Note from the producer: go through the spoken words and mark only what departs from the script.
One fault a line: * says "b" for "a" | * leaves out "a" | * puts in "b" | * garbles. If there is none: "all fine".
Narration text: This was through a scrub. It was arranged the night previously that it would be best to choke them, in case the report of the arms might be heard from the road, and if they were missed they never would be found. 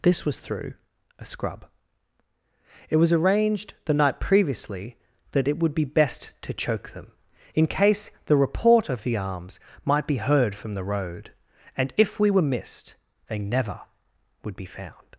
* says "we" for "they"